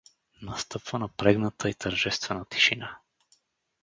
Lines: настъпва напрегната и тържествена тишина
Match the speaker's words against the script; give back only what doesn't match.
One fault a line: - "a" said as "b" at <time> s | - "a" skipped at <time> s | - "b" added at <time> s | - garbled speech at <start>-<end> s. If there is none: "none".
none